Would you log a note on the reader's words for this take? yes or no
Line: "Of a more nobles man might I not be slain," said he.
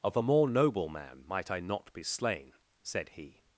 yes